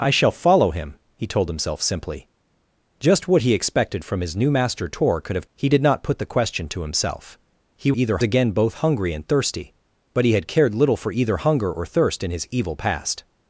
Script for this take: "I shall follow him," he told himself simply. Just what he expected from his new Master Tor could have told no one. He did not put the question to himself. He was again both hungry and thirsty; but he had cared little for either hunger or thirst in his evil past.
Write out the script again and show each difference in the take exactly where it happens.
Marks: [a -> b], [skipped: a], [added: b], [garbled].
"I shall follow him," he told himself simply. Just what he expected from his new Master Tor could have [skipped: told no one.] He did not put the question to himself. He [was -> either] again both hungry and thirsty; but he had cared little for either hunger or thirst in his evil past.